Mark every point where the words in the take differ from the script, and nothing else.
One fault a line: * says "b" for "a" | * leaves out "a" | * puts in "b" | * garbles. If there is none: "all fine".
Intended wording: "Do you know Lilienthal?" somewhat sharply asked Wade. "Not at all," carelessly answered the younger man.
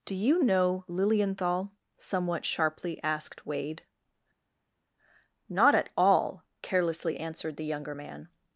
all fine